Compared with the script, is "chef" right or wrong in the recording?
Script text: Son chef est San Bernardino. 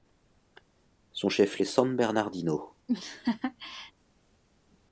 right